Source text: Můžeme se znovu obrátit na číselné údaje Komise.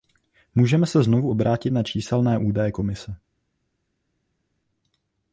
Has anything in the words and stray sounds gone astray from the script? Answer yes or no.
no